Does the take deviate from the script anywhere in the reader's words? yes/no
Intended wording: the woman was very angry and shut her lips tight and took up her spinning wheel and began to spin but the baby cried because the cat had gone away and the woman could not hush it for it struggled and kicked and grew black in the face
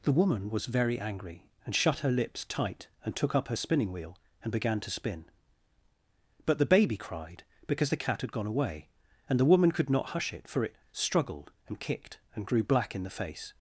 no